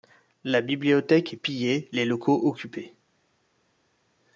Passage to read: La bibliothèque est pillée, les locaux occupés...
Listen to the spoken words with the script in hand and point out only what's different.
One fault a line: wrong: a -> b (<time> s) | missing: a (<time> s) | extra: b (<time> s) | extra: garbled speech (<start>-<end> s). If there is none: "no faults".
no faults